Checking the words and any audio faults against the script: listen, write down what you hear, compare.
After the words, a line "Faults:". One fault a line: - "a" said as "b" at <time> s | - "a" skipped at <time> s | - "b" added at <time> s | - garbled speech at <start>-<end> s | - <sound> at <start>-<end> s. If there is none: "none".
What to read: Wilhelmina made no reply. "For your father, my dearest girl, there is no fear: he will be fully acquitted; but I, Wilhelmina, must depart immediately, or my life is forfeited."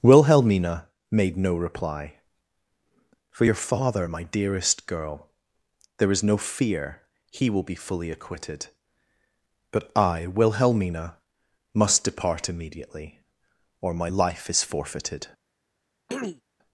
Wilhelmina made no reply. "For your father, my dearest girl, there is no fear: he will be fully acquitted; but I, Wilhelmina, must depart immediately, or my life is forfeited."
Faults:
- throat clearing at 16.1-16.4 s